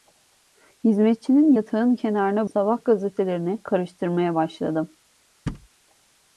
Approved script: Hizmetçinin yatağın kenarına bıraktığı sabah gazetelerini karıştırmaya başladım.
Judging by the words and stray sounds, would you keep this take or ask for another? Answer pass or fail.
fail